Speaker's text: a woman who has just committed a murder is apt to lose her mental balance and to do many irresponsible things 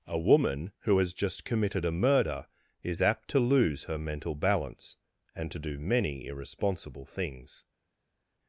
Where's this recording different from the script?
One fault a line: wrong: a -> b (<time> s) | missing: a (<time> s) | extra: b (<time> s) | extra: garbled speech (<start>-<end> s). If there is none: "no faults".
no faults